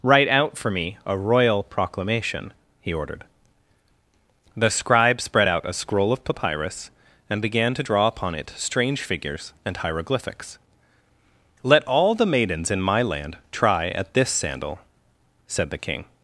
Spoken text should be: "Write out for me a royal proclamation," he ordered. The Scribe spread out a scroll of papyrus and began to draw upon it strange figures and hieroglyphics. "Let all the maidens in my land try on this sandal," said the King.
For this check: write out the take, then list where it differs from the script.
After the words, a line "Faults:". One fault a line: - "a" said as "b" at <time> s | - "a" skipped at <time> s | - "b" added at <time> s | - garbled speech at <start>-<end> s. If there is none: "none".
"Write out for me a royal proclamation," he ordered. The Scribe spread out a scroll of papyrus and began to draw upon it strange figures and hieroglyphics. "Let all the maidens in my land try at this sandal," said the King.
Faults:
- "on" said as "at" at 13.9 s